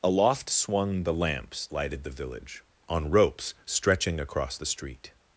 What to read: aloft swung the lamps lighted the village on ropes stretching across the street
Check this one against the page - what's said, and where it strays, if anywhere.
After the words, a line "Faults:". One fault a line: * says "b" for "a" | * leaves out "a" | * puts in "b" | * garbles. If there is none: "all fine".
aloft swung the lamps lighted the village on ropes stretching across the street
Faults:
all fine